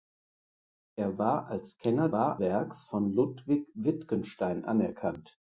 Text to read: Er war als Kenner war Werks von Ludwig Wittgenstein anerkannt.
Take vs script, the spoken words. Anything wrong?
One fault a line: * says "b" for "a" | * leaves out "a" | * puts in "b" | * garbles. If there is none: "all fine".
all fine